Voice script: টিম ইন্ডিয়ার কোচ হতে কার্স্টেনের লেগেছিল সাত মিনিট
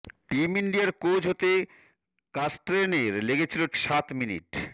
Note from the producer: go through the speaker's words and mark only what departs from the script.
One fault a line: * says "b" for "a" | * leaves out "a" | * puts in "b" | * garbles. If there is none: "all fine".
all fine